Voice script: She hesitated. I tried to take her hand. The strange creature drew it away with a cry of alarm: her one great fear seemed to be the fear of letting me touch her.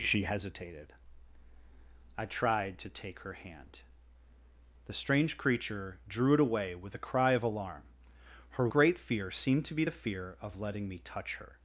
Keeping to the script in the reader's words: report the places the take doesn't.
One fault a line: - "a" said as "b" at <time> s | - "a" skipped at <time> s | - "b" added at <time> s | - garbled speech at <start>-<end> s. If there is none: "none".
- "one" skipped at 8.7 s